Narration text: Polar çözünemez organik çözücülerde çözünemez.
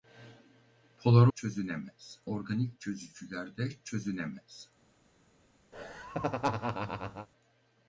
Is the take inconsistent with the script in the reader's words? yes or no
no